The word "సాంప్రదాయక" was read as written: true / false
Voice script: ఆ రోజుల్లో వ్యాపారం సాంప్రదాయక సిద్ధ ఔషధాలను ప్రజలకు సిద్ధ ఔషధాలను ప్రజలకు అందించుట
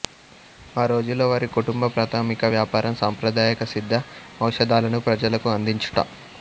false